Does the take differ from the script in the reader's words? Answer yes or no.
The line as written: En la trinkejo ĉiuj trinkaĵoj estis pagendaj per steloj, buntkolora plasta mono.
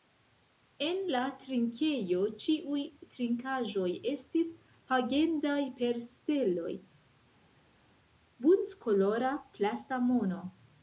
no